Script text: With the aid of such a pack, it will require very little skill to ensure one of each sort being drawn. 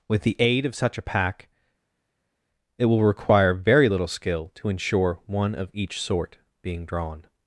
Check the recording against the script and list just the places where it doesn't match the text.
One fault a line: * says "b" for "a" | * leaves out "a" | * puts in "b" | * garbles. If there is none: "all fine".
all fine